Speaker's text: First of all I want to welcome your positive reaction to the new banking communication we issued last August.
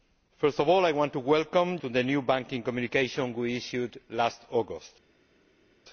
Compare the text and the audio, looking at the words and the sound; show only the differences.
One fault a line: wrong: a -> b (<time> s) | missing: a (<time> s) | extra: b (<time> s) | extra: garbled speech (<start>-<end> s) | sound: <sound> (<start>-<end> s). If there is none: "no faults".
missing: your positive reaction (1.8 s)